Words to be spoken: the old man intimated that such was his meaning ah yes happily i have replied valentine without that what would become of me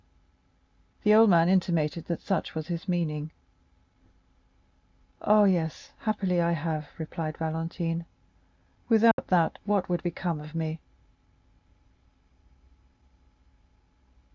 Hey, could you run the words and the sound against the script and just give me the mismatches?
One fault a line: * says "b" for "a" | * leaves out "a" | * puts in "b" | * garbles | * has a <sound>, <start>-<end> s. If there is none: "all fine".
* has a dropout, 9.1-9.2 s